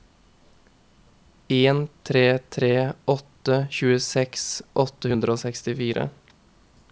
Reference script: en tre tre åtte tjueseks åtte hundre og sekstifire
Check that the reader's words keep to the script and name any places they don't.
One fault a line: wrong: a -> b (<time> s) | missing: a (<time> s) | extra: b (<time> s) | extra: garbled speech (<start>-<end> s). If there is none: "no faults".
no faults